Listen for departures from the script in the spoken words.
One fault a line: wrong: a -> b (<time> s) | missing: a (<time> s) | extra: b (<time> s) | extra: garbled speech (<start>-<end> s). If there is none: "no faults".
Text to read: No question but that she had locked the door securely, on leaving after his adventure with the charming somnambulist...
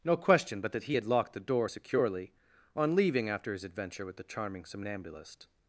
wrong: she -> he (0.8 s)